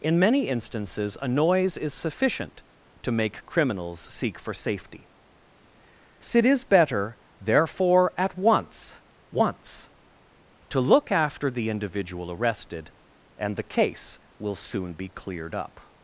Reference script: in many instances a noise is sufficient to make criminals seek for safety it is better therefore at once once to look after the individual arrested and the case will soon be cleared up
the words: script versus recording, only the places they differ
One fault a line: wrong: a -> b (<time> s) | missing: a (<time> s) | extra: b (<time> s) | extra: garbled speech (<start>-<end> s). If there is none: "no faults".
no faults